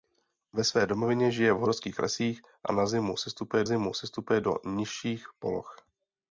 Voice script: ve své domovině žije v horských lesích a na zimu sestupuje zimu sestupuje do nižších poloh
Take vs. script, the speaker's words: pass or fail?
pass